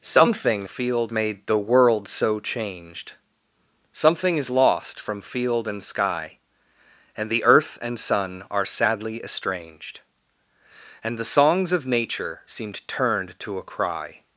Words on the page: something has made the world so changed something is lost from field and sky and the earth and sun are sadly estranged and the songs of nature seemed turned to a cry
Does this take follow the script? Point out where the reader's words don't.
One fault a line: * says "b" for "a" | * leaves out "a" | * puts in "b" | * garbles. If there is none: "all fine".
* says "field" for "has"